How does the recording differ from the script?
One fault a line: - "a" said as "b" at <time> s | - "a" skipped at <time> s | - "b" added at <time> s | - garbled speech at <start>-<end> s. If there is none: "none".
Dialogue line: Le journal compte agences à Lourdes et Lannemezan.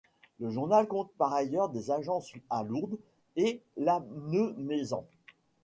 - "par ailleurs des" added at 1.2 s